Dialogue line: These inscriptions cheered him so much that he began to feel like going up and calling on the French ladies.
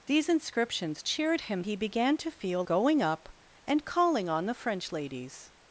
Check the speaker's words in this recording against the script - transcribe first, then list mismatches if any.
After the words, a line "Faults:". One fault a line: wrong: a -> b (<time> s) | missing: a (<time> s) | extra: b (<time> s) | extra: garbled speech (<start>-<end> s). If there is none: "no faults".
These inscriptions cheered him he began to feel going up and calling on the French ladies.
Faults:
missing: so much that (1.6 s)
missing: like (2.6 s)